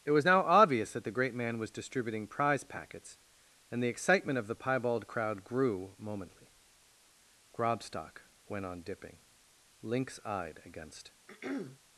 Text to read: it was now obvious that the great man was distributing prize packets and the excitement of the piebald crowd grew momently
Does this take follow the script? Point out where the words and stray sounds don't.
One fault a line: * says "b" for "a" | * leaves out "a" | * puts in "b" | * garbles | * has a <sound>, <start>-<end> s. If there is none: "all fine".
* puts in "grobstock went on dipping lynx eyed against"
* has a throat clearing, 11.3-11.8 s